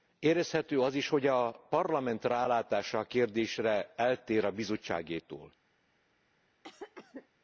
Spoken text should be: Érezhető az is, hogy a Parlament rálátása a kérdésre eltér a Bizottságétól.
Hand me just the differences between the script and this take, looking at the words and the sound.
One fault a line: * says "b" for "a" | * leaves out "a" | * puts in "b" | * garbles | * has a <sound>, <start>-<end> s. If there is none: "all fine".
* has a cough, 6.6-7.3 s